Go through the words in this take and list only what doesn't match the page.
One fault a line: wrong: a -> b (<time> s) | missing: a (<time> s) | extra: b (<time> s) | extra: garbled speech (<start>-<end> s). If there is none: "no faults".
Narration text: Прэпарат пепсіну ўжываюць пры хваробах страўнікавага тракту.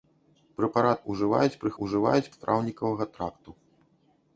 missing: пепсіну (1.0 s)
wrong: хваробах -> ўжываюць (1.8 s)